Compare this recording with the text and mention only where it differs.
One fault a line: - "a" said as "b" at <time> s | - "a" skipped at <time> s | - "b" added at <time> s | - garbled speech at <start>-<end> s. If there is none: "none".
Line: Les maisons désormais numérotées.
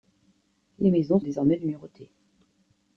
none